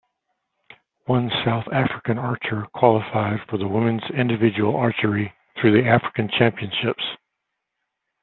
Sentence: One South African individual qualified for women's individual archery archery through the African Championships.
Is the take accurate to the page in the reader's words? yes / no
no